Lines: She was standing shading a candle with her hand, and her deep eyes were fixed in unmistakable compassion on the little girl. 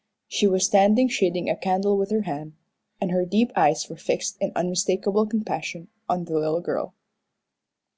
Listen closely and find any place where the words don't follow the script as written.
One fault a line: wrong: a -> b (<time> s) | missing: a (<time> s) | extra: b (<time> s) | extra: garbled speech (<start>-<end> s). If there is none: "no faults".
no faults